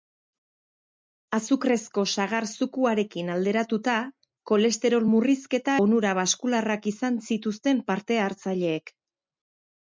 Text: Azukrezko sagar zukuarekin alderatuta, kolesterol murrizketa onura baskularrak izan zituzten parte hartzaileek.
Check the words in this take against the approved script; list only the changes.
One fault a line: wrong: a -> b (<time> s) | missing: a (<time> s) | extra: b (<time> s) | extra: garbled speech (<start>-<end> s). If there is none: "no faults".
no faults